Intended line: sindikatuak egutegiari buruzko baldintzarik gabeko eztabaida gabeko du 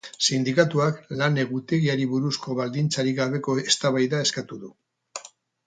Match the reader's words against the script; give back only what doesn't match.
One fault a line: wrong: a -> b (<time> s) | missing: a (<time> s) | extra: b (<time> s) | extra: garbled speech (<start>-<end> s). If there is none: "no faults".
extra: lan (1.2 s)
wrong: gabeko -> eskatu (4.3 s)